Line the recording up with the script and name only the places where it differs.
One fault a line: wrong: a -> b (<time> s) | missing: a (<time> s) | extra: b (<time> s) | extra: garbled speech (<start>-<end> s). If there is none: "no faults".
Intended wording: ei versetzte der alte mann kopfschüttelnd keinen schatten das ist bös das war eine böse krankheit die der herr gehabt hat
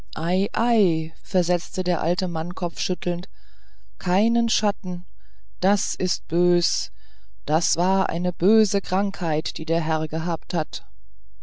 no faults